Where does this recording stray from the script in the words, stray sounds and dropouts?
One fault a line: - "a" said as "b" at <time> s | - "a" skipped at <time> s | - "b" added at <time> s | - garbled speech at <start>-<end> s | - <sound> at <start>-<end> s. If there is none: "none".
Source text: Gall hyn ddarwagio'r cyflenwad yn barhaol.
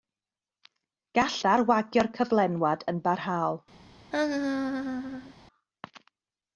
- "hyn" skipped at 1.4 s
- laugh at 4.1-5.3 s